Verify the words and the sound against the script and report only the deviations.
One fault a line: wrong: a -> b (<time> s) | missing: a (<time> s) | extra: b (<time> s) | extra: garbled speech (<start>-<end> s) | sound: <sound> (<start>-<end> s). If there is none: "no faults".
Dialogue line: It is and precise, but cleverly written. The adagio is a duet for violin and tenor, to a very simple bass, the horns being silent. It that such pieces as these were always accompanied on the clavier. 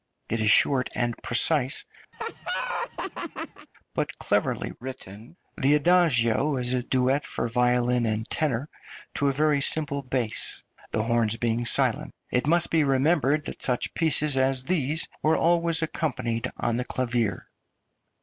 extra: short (0.5 s)
sound: laugh (2.1-3.7 s)
extra: must be remembered (12.5 s)